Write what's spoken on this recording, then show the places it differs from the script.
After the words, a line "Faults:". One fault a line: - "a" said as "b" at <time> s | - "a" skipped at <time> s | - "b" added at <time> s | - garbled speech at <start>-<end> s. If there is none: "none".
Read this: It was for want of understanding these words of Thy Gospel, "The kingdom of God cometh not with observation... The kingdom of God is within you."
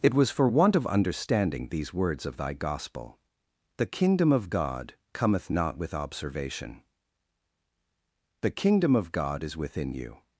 It was for want of understanding these words of Thy Gospel, "The kingdom of God cometh not with observation... The kingdom of God is within you."
Faults:
none